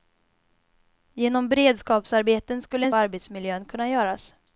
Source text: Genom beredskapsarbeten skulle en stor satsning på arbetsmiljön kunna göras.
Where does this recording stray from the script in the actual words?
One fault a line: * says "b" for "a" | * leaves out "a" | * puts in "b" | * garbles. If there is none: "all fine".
* leaves out "stor satsning på"